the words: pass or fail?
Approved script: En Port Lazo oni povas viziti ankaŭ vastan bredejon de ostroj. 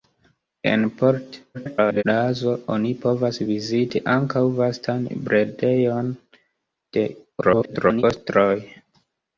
fail